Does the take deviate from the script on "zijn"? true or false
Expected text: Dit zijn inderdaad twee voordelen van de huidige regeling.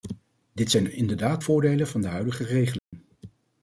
false